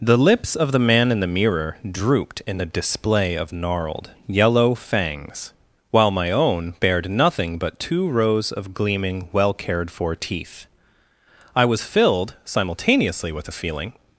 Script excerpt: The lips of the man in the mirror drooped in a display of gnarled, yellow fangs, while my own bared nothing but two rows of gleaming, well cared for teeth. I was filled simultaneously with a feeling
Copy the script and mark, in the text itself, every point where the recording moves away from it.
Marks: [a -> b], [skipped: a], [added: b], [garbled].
The lips of the man in the mirror drooped in a display of gnarled, yellow fangs, while my own bared nothing but two rows of gleaming, well cared for teeth. I was filled simultaneously with a feeling